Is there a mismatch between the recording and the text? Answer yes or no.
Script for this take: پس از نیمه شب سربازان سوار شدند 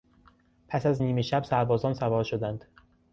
no